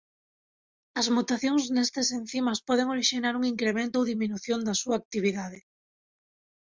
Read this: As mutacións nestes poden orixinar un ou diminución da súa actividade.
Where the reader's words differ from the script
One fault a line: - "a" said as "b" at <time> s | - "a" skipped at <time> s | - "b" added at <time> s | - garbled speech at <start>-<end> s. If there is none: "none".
- "encimas" added at 2.2 s
- "incremento" added at 3.5 s